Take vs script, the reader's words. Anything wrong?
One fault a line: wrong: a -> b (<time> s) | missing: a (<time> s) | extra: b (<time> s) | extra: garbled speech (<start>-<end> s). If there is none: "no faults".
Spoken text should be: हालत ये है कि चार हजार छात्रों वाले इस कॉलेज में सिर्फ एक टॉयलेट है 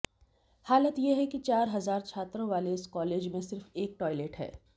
no faults